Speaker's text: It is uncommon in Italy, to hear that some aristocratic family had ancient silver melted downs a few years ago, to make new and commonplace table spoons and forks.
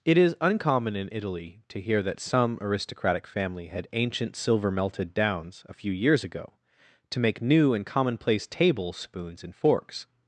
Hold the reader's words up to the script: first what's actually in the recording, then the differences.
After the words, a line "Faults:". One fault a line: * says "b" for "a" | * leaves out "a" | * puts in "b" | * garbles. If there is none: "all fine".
It is uncommon in Italy, to hear that some aristocratic family had ancient silver melted downs a few years ago, to make new and commonplace table spoons and forks.
Faults:
all fine